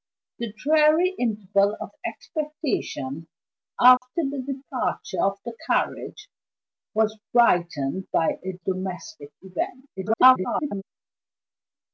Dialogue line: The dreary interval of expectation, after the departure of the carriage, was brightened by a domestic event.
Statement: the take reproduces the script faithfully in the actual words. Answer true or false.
false